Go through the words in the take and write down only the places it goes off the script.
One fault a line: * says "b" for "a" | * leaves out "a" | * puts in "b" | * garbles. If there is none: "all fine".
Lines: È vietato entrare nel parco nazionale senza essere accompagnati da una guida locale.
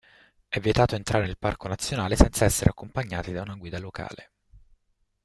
all fine